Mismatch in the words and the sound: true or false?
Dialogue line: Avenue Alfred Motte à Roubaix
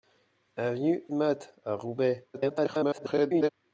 true